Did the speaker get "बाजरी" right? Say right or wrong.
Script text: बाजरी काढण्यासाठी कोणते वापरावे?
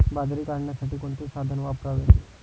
right